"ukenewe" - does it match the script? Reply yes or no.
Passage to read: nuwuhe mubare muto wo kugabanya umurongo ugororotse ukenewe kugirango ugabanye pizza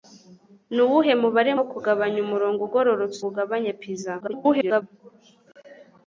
no